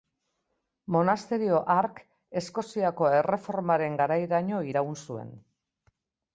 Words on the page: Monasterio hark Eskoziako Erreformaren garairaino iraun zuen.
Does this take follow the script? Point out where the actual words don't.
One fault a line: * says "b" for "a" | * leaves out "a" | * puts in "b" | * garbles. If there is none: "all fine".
all fine